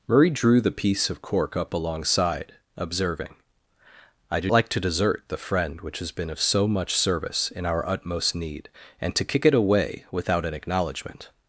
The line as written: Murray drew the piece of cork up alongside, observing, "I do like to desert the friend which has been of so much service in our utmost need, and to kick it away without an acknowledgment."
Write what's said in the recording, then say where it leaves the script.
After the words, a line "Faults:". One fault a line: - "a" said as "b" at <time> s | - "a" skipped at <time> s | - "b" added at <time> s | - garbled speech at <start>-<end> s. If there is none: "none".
Murray drew the piece of cork up alongside, observing, "I do like to desert the friend which has been of so much service in our utmost need, and to kick it away without an acknowledgment."
Faults:
none